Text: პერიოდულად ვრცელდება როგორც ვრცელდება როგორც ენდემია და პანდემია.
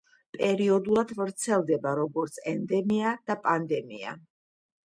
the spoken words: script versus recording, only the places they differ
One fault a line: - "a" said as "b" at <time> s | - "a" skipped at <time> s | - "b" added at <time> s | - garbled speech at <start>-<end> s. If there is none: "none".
- "ვრცელდება როგორც" skipped at 2.4 s